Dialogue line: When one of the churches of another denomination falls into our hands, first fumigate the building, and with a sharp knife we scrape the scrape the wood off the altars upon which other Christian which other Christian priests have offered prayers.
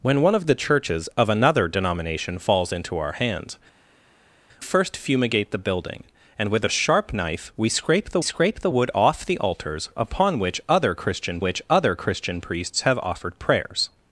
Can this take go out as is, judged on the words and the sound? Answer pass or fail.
pass